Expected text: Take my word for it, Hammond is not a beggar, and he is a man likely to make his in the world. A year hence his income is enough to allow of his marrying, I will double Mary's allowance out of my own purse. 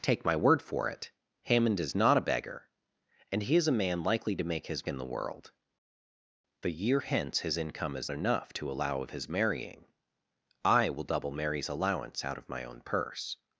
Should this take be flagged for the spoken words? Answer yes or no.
no